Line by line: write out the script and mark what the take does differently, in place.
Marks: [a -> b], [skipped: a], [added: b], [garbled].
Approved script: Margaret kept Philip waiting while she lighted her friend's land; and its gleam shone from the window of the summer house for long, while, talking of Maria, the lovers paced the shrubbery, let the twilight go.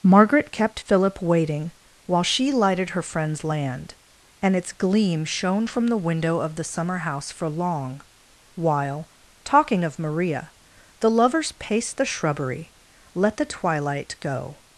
Margaret kept Philip waiting while she lighted her friend's land; and its gleam shone from the window of the summer house for long, while, talking of Maria, the lovers paced the shrubbery, let the twilight go.